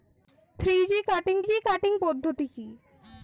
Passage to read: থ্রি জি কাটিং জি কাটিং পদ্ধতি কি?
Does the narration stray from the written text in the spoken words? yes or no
no